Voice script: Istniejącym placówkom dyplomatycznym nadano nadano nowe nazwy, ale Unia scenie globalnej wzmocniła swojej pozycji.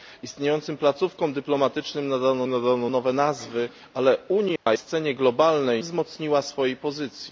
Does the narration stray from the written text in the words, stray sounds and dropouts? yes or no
yes